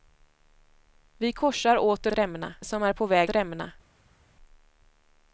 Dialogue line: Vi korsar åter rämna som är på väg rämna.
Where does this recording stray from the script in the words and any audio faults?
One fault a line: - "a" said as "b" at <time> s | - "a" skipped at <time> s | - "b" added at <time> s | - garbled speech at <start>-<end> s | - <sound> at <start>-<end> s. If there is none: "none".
none